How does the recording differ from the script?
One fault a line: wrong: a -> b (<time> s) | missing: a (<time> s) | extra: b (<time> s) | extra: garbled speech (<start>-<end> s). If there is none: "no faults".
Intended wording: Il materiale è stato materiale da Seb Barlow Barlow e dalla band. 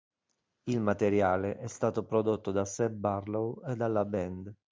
wrong: materiale -> prodotto (2.0 s)
missing: Barlow (3.6 s)